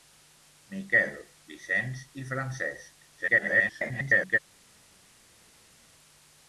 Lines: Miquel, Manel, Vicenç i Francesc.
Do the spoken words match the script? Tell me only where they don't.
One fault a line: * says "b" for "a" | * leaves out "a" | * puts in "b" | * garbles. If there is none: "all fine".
* leaves out "Manel"
* garbles